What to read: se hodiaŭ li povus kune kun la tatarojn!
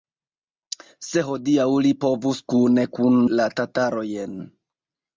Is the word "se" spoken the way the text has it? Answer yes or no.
yes